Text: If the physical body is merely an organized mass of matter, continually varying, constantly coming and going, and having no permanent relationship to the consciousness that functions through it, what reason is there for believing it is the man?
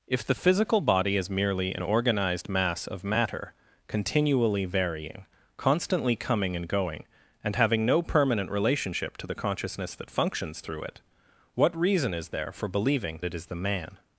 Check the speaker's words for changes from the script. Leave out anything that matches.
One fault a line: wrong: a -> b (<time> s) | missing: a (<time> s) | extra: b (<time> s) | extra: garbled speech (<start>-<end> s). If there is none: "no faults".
no faults